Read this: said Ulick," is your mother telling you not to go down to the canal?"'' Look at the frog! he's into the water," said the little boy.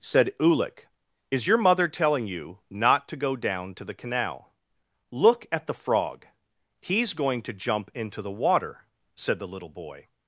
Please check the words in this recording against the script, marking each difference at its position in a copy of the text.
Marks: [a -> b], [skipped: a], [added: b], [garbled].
said Ulick," is your mother telling you not to go down to the canal?"'' Look at the frog! he's [added: going to jump] into the water," said the little boy.